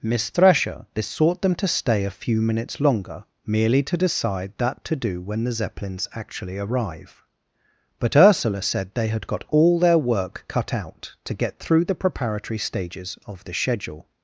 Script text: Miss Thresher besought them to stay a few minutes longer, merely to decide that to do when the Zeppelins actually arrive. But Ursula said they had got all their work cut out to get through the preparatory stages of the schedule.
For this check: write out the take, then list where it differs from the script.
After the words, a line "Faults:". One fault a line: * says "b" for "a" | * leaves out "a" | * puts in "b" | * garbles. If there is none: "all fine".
Miss Thresher besought them to stay a few minutes longer, merely to decide that to do when the Zeppelins actually arrive. But Ursula said they had got all their work cut out to get through the preparatory stages of the schedule.
Faults:
all fine